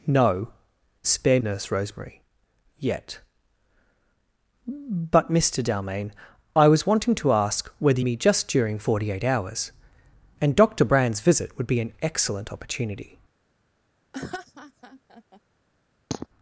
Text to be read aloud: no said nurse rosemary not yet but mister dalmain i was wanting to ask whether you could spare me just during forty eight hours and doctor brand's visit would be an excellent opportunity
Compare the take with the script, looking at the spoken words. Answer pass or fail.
fail